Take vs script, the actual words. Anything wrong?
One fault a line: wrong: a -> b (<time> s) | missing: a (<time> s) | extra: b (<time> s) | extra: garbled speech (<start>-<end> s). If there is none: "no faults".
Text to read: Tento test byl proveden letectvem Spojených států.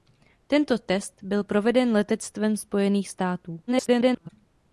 extra: garbled speech (3.7-4.3 s)